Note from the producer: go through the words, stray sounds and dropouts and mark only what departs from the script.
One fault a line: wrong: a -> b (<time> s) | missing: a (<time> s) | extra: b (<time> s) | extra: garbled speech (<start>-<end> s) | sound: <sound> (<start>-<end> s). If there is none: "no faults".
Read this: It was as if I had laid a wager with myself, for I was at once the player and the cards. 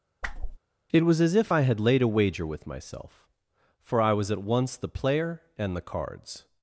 sound: whoosh (0.2-0.6 s)